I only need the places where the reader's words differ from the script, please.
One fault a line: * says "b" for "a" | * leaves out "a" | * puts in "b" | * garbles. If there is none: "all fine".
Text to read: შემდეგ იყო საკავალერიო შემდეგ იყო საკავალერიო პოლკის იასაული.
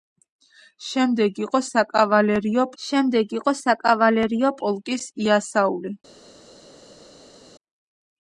all fine